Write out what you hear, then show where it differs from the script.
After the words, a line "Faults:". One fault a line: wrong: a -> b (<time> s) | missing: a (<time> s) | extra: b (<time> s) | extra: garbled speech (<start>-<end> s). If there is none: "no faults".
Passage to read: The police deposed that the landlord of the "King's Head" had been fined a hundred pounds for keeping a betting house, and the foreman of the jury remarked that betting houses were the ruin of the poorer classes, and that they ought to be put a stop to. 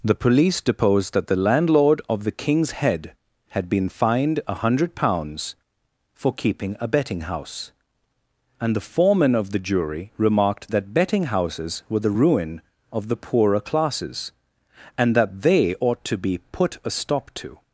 The police deposed that the landlord of the "King's Head" had been fined a hundred pounds for keeping a betting house, and the foreman of the jury remarked that betting houses were the ruin of the poorer classes, and that they ought to be put a stop to.
Faults:
no faults